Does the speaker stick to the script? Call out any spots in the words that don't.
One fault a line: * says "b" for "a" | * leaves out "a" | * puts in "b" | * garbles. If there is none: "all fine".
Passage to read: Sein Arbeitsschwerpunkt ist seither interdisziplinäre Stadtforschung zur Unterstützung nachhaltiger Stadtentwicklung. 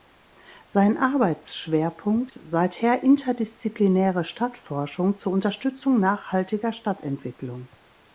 * leaves out "ist"